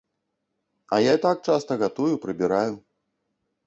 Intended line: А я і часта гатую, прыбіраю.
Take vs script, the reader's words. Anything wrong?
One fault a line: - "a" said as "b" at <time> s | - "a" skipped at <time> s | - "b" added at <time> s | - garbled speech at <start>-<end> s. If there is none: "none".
- "так" added at 1.3 s